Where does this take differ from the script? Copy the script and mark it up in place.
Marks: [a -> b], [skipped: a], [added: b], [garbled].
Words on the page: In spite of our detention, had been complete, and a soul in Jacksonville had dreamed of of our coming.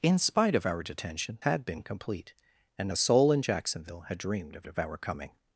In spite of our detention, had been complete, and a soul in Jacksonville had dreamed of of our coming.